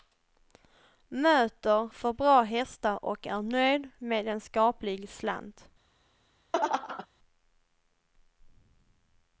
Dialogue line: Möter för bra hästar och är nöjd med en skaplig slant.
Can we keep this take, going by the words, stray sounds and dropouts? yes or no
no